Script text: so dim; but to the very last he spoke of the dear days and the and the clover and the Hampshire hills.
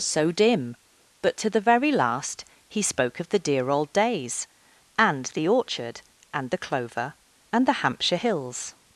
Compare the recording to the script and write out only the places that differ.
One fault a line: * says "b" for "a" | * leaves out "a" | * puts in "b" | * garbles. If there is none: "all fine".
* puts in "old"
* puts in "orchard"